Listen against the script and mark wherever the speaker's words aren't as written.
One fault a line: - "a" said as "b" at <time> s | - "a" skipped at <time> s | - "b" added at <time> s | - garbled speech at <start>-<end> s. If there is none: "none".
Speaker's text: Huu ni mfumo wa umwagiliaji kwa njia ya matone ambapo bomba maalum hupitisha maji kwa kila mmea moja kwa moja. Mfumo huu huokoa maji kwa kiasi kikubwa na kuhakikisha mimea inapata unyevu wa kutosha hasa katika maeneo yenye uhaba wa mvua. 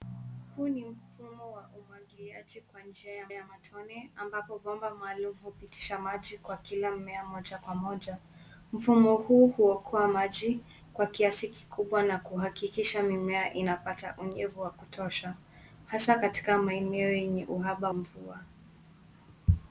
- "ya" added at 3.3 s
- "wa" skipped at 17.9 s